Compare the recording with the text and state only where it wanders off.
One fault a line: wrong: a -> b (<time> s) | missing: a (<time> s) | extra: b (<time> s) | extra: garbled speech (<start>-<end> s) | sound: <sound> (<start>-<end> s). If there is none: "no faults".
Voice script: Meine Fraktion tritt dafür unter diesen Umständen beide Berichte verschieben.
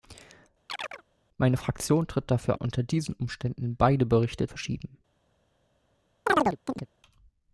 sound: chirp (0.7-1.0 s)
sound: chirp (6.3-6.9 s)